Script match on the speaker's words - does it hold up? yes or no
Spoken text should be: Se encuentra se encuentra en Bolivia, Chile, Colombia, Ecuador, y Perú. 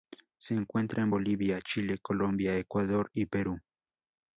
no